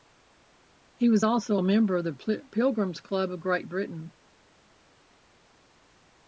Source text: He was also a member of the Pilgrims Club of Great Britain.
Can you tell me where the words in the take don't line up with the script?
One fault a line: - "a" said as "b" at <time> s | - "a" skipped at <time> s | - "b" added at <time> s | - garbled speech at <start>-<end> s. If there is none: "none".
none